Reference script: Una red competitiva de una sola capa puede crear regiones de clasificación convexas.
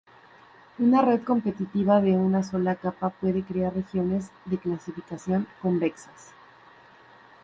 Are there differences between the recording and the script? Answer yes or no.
no